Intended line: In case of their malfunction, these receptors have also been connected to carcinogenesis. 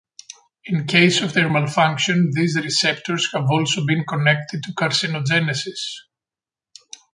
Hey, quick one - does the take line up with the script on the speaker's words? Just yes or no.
yes